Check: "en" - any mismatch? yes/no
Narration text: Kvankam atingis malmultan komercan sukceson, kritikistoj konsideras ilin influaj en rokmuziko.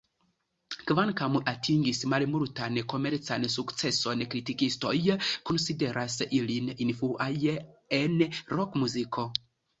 no